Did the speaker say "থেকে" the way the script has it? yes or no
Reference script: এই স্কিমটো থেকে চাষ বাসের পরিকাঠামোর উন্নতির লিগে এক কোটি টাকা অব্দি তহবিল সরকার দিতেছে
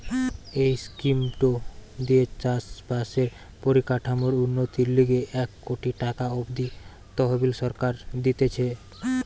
no